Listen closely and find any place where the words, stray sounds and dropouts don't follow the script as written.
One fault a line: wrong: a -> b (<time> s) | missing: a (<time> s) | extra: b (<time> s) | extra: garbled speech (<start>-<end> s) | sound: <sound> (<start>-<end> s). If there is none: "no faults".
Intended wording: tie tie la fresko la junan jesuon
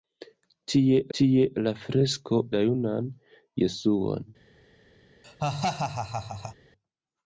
sound: laugh (5.2-6.5 s)